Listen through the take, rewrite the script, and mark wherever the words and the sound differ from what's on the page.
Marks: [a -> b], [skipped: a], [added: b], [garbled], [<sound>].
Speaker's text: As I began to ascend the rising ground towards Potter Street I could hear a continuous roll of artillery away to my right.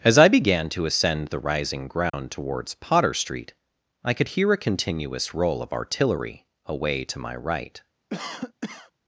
As I began to ascend the rising ground [dropout] towards Potter Street I could hear a continuous roll of artillery away to my right. [cough]